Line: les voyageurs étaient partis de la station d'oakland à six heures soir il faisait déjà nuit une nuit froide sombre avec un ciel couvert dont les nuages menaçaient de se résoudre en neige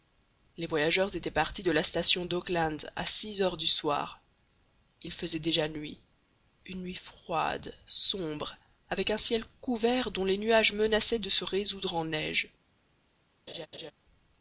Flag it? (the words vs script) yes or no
yes